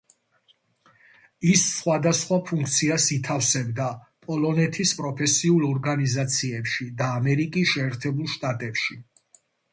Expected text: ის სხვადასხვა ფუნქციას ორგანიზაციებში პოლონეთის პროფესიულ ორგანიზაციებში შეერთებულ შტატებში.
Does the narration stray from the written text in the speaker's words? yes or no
yes